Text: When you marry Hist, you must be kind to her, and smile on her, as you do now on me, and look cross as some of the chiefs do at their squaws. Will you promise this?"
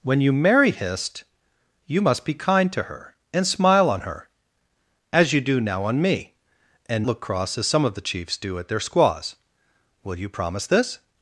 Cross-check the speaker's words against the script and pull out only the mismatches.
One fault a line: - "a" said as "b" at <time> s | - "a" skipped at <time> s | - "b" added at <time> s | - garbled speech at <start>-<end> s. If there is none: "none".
none